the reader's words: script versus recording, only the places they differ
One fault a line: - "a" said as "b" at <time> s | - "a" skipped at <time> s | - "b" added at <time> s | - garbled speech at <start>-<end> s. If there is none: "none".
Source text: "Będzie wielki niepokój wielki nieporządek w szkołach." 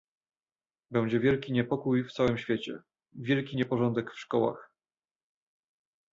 - "w całym świecie" added at 2.0 s